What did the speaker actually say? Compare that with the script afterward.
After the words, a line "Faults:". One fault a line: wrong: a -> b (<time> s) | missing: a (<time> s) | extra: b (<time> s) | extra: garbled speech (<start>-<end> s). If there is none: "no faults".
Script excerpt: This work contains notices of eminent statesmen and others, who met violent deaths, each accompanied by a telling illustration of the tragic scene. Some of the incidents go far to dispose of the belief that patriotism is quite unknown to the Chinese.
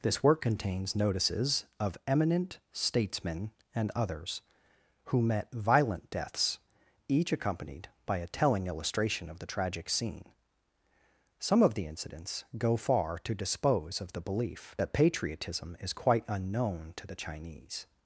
This work contains notices of eminent statesmen and others, who met violent deaths, each accompanied by a telling illustration of the tragic scene. Some of the incidents go far to dispose of the belief that patriotism is quite unknown to the Chinese.
Faults:
no faults